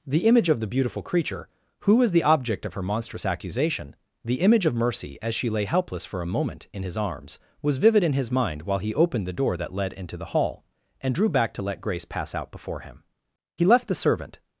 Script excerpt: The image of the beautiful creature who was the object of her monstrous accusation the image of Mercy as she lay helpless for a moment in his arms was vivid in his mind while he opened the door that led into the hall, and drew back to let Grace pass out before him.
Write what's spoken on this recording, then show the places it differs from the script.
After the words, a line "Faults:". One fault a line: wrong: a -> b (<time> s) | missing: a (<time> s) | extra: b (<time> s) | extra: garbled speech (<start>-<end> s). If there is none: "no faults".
The image of the beautiful creature who was the object of her monstrous accusation the image of Mercy as she lay helpless for a moment in his arms was vivid in his mind while he opened the door that led into the hall, and drew back to let Grace pass out before him. He left the servant
Faults:
extra: He left the servant (13.6 s)